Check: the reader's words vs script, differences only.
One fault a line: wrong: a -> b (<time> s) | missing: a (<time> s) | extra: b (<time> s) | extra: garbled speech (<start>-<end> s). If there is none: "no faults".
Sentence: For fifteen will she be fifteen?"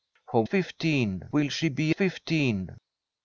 no faults